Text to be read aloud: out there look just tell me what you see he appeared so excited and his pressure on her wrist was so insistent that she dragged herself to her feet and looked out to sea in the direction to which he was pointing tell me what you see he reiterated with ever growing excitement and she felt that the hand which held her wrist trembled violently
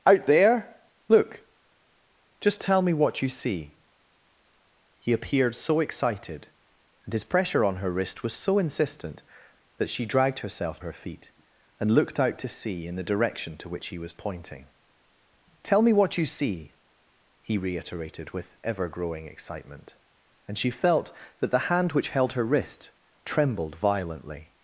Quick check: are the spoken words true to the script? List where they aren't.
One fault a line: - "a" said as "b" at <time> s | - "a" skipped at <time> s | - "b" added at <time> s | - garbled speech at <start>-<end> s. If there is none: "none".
- "to" skipped at 10.8 s